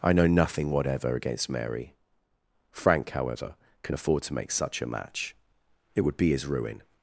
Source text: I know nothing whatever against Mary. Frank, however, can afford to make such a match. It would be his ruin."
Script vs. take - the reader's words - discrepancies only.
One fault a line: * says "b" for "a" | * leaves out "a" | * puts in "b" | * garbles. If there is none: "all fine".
all fine